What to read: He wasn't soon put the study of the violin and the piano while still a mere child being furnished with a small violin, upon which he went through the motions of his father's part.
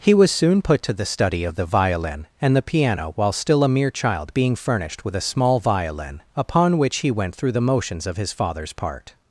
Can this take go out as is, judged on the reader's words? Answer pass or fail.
fail